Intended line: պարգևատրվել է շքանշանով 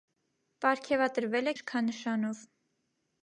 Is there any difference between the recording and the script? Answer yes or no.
no